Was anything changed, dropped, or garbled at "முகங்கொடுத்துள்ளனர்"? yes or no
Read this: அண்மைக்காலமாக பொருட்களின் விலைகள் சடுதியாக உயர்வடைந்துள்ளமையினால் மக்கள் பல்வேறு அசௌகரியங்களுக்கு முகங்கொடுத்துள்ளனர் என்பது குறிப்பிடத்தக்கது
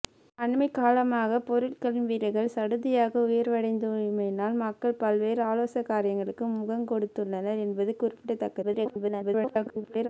no